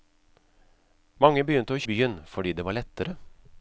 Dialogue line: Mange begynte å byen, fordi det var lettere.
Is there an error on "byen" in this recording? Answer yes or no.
no